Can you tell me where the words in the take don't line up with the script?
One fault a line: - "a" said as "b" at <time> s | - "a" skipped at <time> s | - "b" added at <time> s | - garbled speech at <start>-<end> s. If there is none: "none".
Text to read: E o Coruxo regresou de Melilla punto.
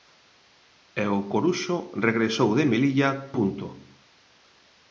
none